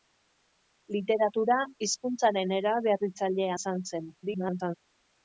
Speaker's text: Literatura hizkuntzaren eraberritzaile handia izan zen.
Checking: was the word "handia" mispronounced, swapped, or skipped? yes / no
yes